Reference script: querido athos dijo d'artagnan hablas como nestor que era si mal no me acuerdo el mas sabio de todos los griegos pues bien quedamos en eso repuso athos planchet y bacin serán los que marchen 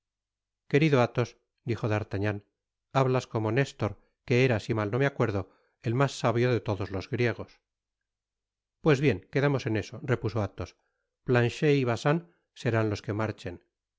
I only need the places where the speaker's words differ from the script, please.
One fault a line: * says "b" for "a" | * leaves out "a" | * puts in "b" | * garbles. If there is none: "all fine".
all fine